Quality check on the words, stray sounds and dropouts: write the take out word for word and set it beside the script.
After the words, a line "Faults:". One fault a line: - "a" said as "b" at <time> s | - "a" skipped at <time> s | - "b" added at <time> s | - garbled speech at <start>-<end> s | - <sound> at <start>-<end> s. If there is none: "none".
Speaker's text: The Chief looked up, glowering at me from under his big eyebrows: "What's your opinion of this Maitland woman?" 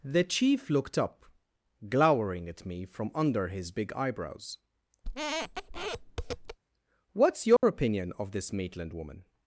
The Chief looked up, glowering at me from under his big eyebrows: "What's your opinion of this Maitland woman?"
Faults:
- squeak at 5.0-6.6 s
- dropout at 7.6-7.6 s